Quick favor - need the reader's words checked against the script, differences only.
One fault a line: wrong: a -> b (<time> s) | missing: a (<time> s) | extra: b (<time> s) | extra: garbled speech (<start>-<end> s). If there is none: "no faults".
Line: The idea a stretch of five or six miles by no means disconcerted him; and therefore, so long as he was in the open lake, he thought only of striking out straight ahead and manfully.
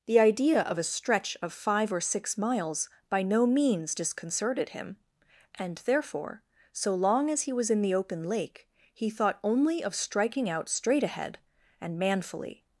extra: of (0.6 s)